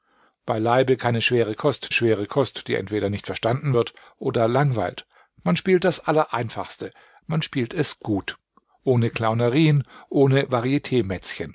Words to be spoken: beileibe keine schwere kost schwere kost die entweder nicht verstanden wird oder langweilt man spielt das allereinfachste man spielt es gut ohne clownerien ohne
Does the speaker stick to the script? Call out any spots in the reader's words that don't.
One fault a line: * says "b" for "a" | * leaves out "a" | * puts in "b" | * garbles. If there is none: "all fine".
all fine